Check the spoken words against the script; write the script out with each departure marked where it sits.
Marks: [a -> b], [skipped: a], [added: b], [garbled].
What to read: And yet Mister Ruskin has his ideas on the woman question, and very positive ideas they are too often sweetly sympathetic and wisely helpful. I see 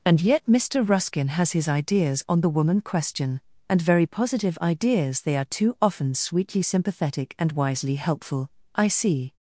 And yet Mister Ruskin has his ideas on the woman question, and very positive ideas they are too often sweetly sympathetic and wisely helpful. I see